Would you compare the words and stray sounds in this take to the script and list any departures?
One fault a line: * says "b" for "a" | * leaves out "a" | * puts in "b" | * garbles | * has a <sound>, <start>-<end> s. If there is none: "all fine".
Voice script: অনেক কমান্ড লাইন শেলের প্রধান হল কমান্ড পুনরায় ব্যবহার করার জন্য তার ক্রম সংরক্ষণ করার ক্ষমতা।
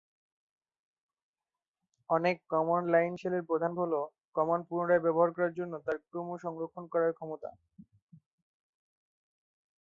all fine